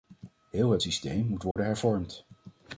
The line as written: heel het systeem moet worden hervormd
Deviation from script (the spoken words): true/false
false